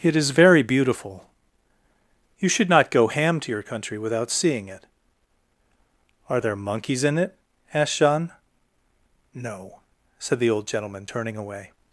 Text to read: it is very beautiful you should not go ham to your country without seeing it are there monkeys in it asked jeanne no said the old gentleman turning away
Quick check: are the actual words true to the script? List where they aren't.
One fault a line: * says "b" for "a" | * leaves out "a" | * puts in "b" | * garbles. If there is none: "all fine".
all fine